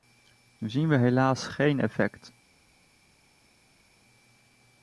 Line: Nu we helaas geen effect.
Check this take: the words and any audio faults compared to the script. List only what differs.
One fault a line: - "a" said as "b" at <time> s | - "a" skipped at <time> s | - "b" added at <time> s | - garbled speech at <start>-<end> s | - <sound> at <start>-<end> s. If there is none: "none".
- "zien" added at 0.7 s